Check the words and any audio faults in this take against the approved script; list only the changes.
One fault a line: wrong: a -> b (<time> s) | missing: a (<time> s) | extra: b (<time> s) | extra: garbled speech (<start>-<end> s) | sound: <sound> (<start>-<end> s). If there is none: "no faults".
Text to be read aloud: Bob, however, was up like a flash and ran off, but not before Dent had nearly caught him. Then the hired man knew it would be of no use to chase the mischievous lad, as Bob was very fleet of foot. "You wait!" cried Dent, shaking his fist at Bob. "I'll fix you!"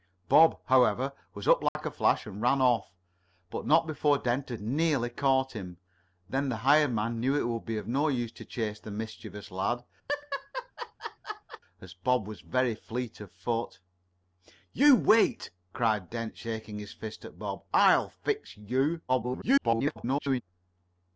sound: dropout (1.7-1.8 s)
sound: laugh (10.1-11.6 s)
extra: garbled speech (19.1-20.4 s)